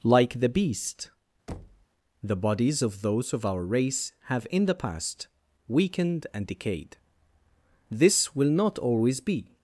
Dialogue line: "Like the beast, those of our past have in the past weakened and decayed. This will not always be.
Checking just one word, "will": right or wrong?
right